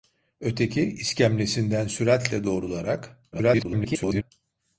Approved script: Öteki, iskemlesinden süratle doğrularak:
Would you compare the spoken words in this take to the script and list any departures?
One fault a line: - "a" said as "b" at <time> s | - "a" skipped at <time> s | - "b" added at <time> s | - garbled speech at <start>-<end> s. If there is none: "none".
- garbled speech at 3.3-4.3 s